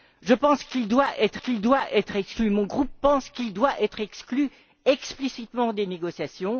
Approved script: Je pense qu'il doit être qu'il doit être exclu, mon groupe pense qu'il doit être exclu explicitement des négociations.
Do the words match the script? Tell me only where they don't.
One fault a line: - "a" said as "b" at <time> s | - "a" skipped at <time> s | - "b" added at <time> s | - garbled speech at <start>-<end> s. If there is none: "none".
none